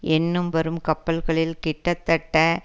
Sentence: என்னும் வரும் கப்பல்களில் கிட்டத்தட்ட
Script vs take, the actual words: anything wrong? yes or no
no